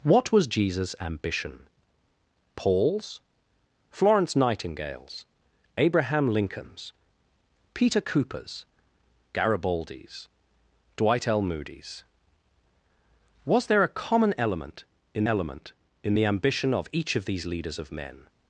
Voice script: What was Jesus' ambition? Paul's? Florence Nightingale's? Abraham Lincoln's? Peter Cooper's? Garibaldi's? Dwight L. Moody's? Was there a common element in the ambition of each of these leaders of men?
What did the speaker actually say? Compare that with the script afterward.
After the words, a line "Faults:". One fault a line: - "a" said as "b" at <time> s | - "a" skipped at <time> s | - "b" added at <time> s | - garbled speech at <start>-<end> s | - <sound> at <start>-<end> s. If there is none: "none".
What was Jesus' ambition? Paul's? Florence Nightingale's? Abraham Lincoln's? Peter Cooper's? Garibaldi's? Dwight L. Moody's? Was there a common element in element in the ambition of each of these leaders of men?
Faults:
- "element in" added at 15.3 s